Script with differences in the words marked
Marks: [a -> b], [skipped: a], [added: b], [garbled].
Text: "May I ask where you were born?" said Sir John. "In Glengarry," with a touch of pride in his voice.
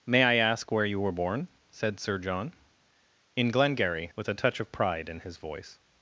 "May I ask where you were born?" said Sir John. "In Glengarry," with a touch of pride in his voice.